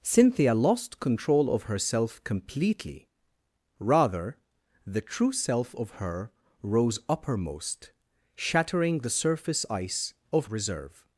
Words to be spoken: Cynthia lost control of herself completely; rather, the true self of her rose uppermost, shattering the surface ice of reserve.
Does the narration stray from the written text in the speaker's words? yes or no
no